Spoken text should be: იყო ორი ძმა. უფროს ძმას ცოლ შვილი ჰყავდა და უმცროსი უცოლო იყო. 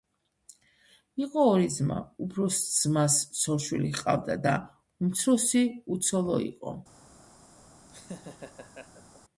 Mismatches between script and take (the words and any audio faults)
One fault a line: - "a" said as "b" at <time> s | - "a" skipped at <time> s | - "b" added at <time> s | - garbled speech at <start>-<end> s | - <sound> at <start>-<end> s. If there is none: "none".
- laugh at 7.9-9.2 s